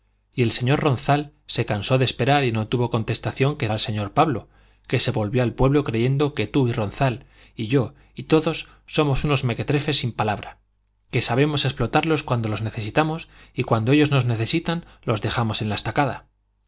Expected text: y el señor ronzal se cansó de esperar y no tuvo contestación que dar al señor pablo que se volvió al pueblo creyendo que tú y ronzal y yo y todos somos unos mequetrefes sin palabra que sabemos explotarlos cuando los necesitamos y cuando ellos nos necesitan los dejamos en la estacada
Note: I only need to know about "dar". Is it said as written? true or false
false